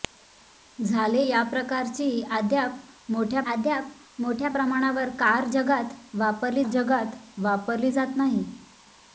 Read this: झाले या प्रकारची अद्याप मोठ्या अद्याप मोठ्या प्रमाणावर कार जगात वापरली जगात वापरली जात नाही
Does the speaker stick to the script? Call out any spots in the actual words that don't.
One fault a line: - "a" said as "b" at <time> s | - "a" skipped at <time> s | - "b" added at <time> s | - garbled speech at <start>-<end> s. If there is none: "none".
none